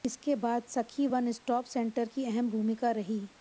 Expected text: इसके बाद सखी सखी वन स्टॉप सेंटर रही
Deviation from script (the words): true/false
true